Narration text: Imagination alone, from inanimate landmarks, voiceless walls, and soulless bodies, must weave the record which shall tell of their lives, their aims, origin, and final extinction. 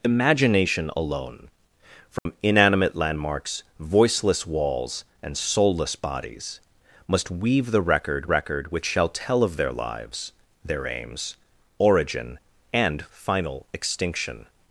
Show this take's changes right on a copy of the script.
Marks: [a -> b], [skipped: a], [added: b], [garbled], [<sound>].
Imagination alone, from [dropout] inanimate landmarks, voiceless walls, and soulless bodies, must weave the record [added: record] which shall tell of their lives, their aims, origin, and final extinction.